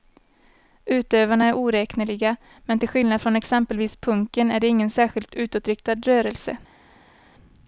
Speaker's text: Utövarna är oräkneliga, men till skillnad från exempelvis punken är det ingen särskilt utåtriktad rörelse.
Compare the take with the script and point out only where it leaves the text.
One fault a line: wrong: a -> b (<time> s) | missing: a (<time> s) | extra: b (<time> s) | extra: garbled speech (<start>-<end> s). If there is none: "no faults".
no faults